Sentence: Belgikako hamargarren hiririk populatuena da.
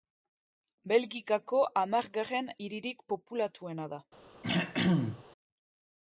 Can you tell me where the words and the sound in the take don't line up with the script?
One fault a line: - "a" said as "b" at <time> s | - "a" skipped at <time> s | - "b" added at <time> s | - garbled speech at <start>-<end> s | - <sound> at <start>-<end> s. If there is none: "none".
- throat clearing at 4.4-5.2 s